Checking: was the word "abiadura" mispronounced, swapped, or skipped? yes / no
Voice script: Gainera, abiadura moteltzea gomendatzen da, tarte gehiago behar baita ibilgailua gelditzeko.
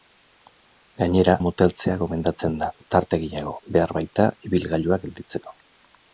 yes